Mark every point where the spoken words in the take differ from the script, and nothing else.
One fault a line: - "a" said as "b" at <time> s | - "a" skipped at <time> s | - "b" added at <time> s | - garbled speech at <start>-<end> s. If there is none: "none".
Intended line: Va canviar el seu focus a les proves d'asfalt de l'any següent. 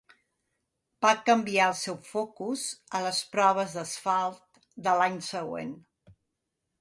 none